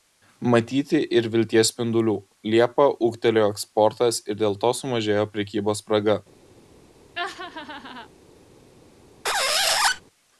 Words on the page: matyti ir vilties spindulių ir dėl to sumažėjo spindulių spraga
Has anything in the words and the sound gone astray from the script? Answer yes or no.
yes